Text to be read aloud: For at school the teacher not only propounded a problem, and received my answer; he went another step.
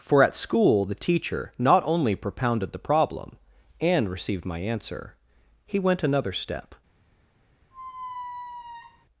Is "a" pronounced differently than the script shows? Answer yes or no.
yes